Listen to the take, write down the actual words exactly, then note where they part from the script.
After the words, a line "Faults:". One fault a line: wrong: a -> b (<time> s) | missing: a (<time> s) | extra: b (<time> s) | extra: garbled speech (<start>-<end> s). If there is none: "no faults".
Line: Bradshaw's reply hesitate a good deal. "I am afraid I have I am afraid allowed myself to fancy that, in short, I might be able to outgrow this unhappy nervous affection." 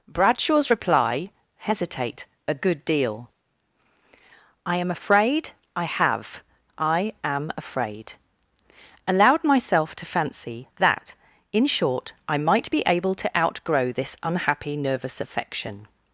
Bradshaw's reply hesitate a good deal. "I am afraid I have I am afraid allowed myself to fancy that, in short, I might be able to outgrow this unhappy nervous affection."
Faults:
no faults